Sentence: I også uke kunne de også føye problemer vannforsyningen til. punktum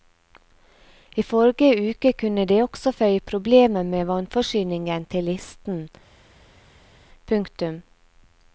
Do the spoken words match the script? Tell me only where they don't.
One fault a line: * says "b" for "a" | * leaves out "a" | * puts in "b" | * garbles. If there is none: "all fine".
* says "forrige" for "også"
* puts in "med"
* puts in "listen"